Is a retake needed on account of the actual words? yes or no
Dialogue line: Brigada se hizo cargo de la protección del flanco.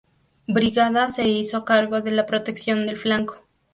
no